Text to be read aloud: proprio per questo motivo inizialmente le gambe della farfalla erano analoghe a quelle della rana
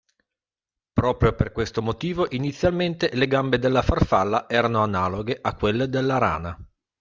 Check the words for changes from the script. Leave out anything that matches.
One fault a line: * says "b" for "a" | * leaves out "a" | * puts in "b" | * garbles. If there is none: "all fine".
all fine